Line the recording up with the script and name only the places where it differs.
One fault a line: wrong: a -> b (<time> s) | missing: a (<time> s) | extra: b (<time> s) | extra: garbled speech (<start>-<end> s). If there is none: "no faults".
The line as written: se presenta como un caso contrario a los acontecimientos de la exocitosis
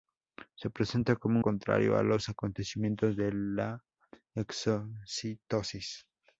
missing: un caso (1.4 s)